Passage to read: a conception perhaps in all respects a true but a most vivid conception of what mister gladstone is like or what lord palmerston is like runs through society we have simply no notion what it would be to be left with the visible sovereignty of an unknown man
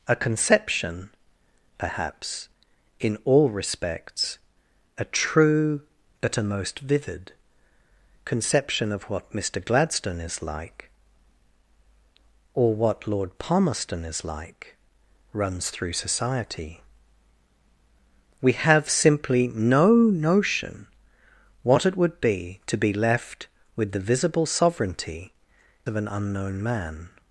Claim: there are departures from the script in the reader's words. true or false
false